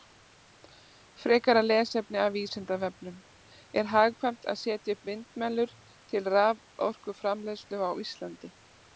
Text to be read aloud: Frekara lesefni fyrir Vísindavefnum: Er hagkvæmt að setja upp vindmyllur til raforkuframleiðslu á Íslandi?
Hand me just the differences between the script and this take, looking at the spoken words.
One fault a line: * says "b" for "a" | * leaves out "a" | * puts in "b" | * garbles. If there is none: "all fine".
* says "af" for "fyrir"